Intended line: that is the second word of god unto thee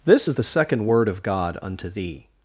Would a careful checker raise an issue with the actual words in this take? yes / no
yes